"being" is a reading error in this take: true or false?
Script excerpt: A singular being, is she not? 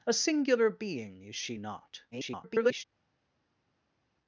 false